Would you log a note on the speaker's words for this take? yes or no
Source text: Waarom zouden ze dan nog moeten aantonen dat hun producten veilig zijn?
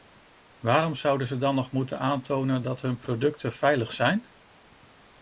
no